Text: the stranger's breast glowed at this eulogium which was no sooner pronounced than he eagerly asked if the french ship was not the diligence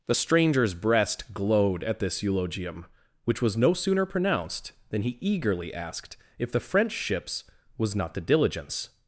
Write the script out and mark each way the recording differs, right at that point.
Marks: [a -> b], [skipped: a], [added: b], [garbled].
the stranger's breast glowed at this eulogium which was no sooner pronounced than he eagerly asked if the french [ship -> ships] was not the diligence